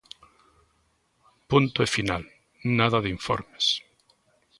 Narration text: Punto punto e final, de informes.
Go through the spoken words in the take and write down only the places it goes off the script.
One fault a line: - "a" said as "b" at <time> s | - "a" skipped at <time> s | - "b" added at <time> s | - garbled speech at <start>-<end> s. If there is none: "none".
- "punto" skipped at 1.8 s
- "nada" added at 2.8 s